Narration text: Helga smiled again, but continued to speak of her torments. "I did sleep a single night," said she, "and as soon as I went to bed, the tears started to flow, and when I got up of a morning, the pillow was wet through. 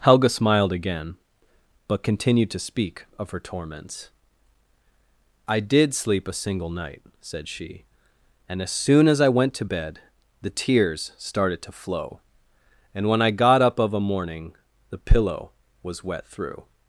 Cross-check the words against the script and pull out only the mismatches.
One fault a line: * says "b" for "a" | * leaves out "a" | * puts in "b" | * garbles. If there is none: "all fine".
all fine